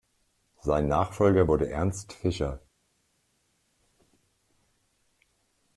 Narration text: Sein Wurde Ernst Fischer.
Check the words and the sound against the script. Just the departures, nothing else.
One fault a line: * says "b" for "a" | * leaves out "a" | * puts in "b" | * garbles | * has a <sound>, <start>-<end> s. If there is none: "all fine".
* puts in "Nachfolger"